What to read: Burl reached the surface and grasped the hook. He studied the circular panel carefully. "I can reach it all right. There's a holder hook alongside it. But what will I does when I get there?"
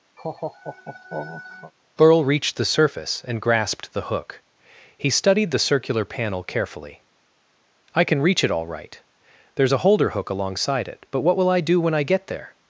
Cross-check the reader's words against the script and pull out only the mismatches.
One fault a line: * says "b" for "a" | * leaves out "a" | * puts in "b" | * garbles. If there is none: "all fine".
* says "do" for "does"